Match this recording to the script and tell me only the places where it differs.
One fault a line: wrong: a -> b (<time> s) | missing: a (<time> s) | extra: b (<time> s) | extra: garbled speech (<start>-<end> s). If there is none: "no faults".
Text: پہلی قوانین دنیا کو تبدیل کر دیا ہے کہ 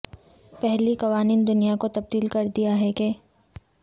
no faults